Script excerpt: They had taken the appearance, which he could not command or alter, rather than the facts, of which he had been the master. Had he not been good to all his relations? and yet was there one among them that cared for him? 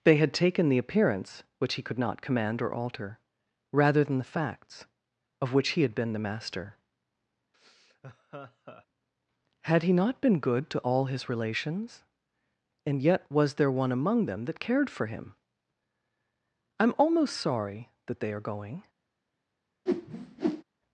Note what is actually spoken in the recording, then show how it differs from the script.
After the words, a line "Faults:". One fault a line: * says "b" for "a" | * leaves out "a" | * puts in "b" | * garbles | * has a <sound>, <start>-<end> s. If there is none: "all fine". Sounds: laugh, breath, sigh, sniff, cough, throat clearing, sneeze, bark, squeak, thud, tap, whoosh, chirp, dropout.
They had taken the appearance, which he could not command or alter, rather than the facts, of which he had been the master. Had he not been good to all his relations? and yet was there one among them that cared for him? "I'm almost sorry that they are going
Faults:
* has a laugh, 7.5-8.9 s
* puts in "I'm almost sorry that they are going"
* has a whoosh, 19.9-20.6 s